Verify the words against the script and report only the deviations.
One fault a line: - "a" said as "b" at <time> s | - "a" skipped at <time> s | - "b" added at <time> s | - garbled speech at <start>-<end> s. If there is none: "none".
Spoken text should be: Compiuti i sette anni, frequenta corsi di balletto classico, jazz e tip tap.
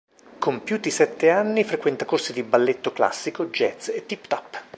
none